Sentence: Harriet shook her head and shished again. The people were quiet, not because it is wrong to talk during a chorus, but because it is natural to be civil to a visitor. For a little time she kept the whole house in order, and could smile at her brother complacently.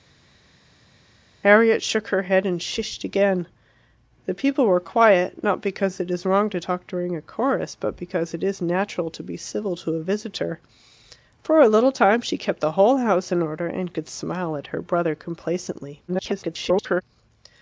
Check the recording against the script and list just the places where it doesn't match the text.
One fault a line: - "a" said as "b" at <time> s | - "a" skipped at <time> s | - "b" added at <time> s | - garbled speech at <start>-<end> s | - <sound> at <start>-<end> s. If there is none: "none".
- garbled speech at 16.1-17.0 s